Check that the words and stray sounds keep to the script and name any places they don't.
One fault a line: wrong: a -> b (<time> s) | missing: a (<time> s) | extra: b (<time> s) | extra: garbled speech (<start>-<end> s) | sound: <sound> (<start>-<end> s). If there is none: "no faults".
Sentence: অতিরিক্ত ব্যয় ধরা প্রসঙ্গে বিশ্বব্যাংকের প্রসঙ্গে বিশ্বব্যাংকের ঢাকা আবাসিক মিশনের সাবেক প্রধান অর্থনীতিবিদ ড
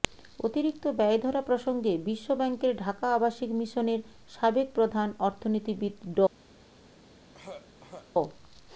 missing: প্রসঙ্গে বিশ্বব্যাংকের (2.7 s)
sound: throat clearing (7.3-8.1 s)